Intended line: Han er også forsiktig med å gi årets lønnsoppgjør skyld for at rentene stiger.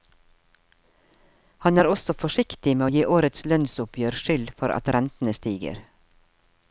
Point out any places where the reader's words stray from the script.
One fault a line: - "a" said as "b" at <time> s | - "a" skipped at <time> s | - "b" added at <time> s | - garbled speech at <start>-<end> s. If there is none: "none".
none